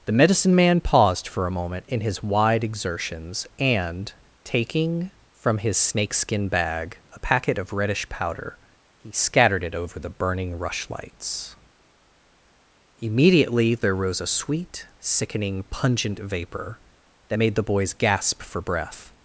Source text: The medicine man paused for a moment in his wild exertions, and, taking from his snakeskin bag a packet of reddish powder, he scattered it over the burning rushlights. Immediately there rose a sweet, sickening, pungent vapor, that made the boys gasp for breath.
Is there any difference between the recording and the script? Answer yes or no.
yes